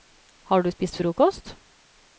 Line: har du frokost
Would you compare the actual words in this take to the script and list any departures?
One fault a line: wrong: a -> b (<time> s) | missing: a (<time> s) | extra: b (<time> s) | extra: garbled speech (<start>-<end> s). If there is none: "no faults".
extra: spist (0.7 s)